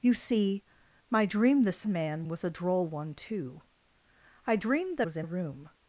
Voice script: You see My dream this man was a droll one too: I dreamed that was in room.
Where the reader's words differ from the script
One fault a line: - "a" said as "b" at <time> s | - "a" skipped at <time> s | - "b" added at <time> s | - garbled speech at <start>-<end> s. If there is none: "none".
none